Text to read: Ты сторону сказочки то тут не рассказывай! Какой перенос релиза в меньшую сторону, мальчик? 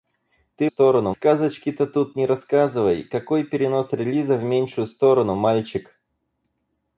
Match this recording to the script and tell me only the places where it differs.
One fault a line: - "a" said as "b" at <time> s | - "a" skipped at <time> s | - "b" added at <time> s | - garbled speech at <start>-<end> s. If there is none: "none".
none